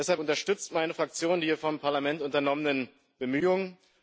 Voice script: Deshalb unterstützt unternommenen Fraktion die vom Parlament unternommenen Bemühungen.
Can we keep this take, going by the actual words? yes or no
no